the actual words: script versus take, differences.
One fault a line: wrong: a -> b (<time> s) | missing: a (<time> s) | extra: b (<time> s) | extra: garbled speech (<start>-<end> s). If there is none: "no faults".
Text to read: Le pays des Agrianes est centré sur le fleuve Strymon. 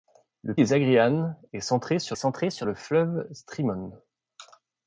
missing: pays (0.6 s)
extra: centré sur (2.1 s)